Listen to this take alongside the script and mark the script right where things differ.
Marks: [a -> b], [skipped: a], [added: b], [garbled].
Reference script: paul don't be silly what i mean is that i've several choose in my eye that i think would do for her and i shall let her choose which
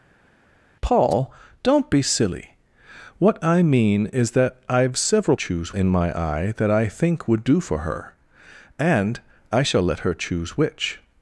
paul don't be silly what i mean is that i've several choose in my eye that i think would do for her and i shall let her choose which